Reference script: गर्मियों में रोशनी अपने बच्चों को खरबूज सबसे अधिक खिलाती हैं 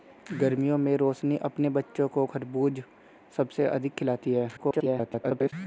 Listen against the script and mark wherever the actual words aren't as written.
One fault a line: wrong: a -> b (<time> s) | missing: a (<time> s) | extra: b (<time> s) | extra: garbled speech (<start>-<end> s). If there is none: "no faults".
extra: garbled speech (4.6-5.5 s)